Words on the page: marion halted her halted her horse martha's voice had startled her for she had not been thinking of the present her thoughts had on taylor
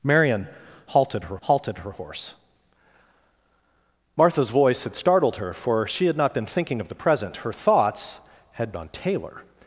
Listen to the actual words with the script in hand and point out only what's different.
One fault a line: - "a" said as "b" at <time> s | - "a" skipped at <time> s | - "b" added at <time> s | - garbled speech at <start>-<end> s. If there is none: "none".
none